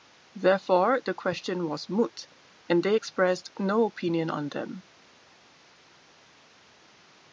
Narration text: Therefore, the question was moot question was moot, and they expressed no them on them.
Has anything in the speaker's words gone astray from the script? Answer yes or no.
yes